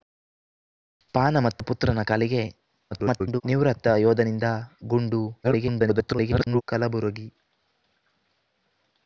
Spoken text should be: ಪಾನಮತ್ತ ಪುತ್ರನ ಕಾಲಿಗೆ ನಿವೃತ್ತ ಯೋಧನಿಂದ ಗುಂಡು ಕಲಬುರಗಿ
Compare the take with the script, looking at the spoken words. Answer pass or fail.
fail